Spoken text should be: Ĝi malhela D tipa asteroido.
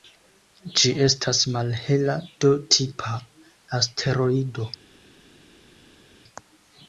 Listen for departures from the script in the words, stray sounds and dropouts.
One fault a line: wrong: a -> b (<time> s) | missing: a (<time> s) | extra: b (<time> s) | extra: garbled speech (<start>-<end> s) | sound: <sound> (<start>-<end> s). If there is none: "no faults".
extra: estas (1.1 s)